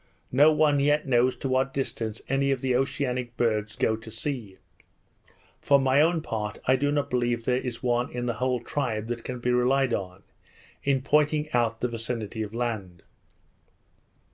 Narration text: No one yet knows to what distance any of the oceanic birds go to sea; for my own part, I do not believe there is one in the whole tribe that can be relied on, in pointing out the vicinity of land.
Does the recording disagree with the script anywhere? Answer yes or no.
no